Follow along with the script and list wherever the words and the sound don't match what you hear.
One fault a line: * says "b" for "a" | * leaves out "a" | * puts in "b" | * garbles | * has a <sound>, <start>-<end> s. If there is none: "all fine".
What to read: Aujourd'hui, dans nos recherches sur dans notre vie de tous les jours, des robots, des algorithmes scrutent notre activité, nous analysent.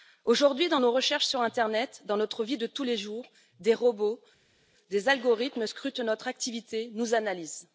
* puts in "l'internet"